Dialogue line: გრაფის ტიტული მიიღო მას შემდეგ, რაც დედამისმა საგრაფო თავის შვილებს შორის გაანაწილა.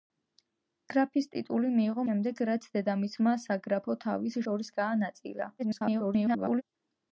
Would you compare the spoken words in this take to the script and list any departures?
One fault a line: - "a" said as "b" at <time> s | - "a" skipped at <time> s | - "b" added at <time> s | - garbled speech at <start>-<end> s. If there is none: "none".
- "მას" skipped at 2.0 s
- "შვილებს" skipped at 4.4 s
- garbled speech at 5.6-6.6 s